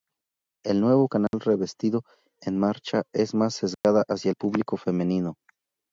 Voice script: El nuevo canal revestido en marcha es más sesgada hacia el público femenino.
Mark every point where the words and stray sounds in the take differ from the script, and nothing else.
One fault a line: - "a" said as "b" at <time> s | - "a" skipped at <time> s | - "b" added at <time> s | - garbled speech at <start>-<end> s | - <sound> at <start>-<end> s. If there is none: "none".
- dropout at 1.3-1.3 s
- dropout at 3.7-3.8 s